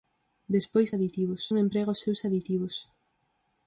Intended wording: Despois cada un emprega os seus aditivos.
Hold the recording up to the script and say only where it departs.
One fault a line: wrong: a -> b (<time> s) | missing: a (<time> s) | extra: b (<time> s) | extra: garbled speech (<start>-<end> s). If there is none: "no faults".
wrong: cada -> aditivos (1.0 s)